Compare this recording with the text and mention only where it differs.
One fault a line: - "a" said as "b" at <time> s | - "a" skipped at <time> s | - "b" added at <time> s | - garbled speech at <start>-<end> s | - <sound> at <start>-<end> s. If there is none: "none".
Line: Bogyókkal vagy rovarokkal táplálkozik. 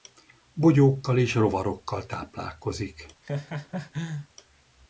- "vagy" said as "és" at 1.2 s
- laugh at 3.2-4.3 s